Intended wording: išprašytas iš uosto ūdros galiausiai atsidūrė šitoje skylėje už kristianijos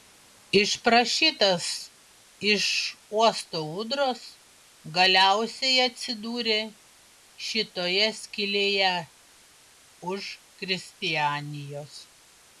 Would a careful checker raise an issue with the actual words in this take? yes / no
no